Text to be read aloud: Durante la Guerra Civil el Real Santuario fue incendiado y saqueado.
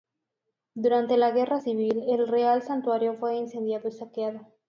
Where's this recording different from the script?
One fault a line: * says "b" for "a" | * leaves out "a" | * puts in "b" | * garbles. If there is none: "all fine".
all fine